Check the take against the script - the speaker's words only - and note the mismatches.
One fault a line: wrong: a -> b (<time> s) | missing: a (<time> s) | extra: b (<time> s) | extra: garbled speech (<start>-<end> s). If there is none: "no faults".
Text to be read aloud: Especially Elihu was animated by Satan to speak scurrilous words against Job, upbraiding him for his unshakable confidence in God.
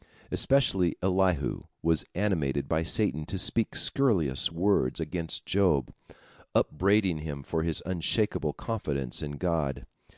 no faults